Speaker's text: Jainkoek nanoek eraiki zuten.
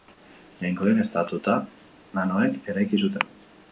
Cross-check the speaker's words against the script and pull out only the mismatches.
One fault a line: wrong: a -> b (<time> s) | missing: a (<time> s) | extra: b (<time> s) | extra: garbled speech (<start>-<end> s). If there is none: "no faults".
no faults